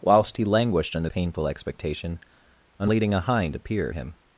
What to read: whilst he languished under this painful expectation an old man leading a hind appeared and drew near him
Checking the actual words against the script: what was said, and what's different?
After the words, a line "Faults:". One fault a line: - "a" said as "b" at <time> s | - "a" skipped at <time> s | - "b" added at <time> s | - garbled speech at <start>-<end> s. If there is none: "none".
whilst he languished under painful expectation an leading a hind appeared him
Faults:
- "this" skipped at 1.1 s
- "old man" skipped at 2.9 s
- "and drew near" skipped at 3.9 s